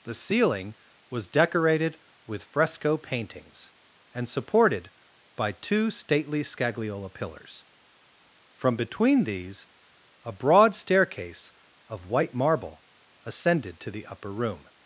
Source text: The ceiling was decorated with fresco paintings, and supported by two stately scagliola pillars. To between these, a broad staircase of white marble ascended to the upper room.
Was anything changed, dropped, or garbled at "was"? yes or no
no